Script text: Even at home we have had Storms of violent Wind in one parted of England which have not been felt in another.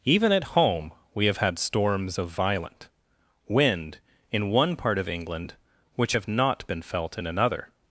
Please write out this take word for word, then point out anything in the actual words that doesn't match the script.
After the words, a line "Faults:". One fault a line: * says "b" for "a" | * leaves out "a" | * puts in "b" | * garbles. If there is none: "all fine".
Even at home we have had Storms of violent Wind in one part of England which have not been felt in another.
Faults:
* says "part" for "parted"